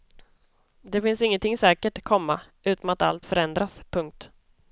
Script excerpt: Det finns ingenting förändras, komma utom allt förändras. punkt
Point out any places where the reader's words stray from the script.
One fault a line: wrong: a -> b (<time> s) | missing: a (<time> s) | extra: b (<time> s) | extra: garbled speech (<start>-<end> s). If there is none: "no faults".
wrong: förändras -> säkert (1.6 s)
extra: att (2.9 s)